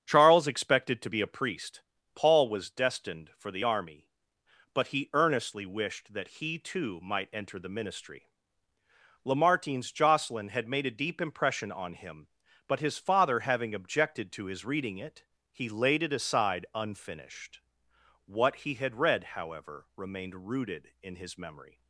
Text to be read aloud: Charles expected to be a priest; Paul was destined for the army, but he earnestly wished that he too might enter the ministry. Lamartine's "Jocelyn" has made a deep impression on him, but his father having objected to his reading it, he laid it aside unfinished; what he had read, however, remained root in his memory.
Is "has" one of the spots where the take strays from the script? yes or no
yes